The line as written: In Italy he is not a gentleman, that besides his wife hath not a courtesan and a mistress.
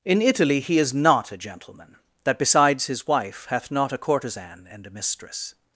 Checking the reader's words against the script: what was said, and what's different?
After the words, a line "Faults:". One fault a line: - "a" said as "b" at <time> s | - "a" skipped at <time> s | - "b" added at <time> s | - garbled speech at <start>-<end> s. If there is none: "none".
In Italy he is not a gentleman, that besides his wife hath not a courtesan and a mistress.
Faults:
none